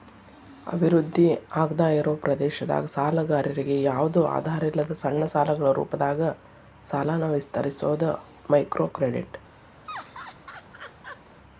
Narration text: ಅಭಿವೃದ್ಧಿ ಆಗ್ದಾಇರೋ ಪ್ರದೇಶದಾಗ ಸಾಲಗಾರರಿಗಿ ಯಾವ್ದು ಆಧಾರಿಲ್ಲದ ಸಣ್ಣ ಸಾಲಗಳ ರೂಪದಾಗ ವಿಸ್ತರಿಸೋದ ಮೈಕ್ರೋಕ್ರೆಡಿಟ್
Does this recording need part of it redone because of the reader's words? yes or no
yes